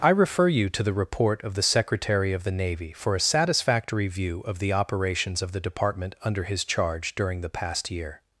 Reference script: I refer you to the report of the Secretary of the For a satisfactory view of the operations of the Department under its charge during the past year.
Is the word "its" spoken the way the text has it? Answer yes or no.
no